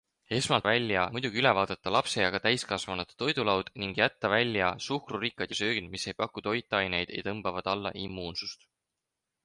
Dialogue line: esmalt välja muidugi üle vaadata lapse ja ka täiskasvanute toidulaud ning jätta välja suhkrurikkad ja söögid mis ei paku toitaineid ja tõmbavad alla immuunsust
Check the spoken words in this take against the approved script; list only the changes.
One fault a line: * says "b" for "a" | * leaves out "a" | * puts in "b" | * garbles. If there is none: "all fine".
all fine